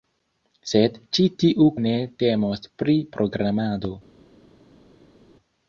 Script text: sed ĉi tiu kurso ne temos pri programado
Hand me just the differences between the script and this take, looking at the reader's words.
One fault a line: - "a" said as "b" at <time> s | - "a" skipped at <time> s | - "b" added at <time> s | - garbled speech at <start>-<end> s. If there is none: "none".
- "kurso" skipped at 1.7 s